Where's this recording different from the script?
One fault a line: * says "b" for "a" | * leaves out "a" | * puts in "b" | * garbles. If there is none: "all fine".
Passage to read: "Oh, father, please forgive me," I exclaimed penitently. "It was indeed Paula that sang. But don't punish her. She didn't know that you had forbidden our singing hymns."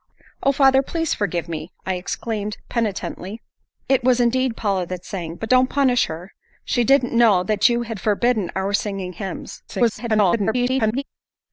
* garbles